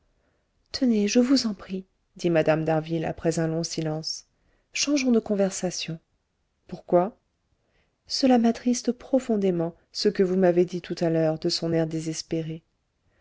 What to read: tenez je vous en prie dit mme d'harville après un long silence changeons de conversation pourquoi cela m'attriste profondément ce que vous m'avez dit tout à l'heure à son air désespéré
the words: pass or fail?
fail